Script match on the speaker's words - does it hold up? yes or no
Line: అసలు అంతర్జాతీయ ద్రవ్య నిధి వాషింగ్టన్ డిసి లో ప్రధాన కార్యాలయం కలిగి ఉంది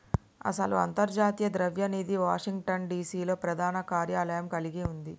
yes